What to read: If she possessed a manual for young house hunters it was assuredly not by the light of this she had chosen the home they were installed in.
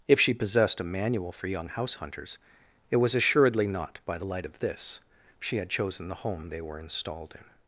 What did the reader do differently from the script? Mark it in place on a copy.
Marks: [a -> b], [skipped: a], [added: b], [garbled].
If she possessed a manual for young house hunters it was assuredly not by the light of this she had chosen the home they were installed in.